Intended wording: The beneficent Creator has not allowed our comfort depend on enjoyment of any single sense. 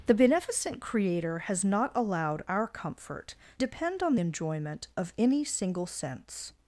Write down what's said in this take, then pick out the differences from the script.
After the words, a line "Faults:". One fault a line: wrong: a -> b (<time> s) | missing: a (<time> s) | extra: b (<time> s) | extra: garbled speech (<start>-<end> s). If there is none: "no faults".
The beneficent Creator has not allowed our comfort depend on enjoyment of any single sense.
Faults:
no faults